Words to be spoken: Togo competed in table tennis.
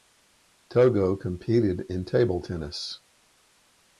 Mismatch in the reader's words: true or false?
false